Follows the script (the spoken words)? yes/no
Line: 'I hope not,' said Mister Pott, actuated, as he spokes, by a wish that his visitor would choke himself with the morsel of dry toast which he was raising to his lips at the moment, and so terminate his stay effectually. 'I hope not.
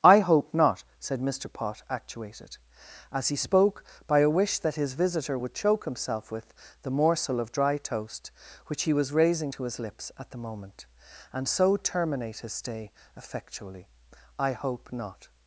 no